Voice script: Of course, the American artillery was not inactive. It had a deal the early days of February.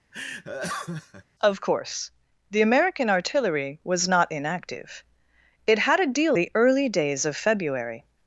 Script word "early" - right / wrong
right